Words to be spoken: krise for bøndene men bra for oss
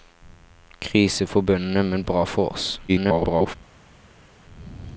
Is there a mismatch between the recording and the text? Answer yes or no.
yes